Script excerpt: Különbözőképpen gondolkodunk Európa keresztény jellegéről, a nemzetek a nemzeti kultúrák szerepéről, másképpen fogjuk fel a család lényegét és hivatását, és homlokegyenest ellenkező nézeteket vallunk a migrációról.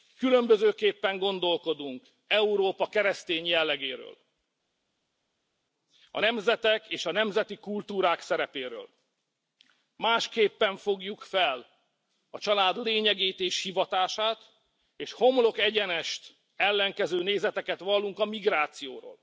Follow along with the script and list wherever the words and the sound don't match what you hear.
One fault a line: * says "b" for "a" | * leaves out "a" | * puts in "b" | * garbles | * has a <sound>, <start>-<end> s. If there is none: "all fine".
* puts in "és"